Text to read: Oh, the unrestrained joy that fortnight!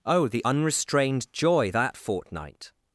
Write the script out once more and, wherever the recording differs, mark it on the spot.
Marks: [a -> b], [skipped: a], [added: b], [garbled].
Oh, the unrestrained joy that fortnight!